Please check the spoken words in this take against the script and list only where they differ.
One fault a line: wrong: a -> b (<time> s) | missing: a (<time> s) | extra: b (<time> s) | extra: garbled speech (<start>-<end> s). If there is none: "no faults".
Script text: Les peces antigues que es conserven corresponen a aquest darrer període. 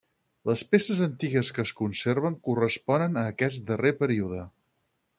no faults